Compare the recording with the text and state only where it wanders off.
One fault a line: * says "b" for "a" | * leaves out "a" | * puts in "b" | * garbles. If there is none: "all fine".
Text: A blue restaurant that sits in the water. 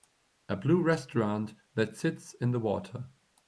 all fine